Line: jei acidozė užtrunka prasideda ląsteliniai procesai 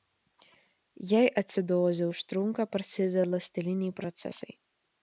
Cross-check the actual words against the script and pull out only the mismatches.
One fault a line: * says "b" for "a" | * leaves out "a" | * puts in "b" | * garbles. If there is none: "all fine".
all fine